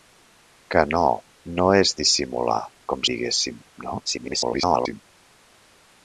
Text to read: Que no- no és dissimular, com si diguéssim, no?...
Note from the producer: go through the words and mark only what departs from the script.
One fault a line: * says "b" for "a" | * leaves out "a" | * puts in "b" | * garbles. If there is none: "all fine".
* leaves out "si"
* garbles